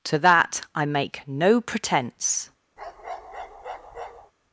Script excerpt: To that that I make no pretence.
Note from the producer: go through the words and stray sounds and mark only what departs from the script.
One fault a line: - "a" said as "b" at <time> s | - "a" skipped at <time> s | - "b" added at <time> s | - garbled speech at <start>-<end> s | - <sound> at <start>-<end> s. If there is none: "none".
- "that" skipped at 0.7 s
- bark at 2.8-4.3 s